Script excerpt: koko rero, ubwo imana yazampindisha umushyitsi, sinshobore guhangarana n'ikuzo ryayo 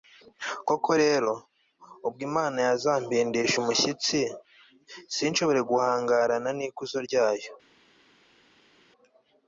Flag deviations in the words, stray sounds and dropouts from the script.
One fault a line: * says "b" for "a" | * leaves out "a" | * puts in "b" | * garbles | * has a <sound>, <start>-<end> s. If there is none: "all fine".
all fine